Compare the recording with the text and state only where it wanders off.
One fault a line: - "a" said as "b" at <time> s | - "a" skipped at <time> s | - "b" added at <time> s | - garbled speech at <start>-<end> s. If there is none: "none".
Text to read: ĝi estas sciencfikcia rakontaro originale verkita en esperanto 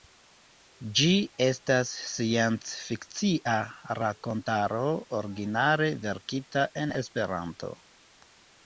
none